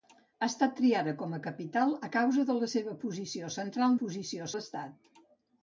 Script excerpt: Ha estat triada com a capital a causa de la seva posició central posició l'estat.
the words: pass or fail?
pass